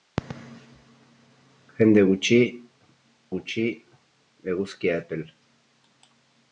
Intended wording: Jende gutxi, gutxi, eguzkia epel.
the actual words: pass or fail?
pass